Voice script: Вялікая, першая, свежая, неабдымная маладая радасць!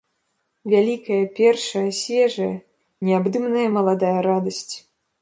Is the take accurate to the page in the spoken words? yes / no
yes